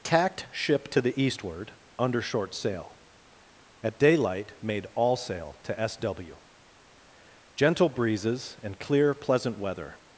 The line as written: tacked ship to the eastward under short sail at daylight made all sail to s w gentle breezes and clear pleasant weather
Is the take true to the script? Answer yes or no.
yes